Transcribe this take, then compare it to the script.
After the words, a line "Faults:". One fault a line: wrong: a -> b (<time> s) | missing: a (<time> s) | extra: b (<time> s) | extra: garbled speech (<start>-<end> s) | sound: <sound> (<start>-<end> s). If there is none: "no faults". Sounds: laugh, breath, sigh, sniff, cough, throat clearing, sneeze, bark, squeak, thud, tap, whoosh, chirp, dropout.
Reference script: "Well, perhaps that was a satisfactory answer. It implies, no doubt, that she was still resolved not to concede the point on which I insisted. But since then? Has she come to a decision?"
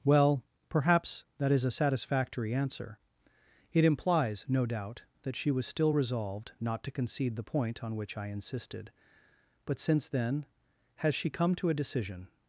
"Well, perhaps that is a satisfactory answer. It implies, no doubt, that she was still resolved not to concede the point on which I insisted. But since then? Has she come to a decision?"
Faults:
wrong: was -> is (1.5 s)